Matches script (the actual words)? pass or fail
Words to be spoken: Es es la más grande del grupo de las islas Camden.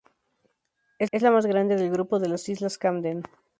pass